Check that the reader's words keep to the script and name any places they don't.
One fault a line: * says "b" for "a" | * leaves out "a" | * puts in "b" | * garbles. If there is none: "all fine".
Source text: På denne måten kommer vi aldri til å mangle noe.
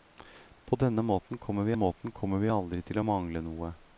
* puts in "måten kommer vi"